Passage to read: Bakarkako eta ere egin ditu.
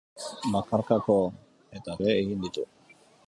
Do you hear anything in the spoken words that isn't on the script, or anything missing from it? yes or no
no